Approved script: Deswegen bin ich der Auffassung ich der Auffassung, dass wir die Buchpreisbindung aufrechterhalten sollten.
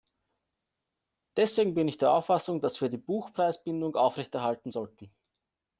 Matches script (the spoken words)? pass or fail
fail